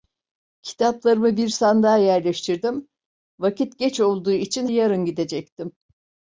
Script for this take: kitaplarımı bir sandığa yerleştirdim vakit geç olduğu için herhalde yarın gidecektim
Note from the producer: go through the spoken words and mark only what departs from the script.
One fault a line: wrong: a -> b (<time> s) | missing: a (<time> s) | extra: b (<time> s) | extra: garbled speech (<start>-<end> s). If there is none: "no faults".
missing: herhalde (4.7 s)